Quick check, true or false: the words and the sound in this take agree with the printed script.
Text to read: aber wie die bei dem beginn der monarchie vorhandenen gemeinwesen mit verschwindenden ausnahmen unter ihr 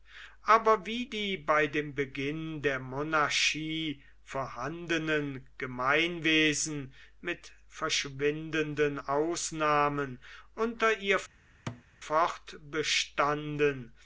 false